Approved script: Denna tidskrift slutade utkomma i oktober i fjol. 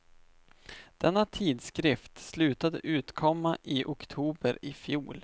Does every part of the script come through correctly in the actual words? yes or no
yes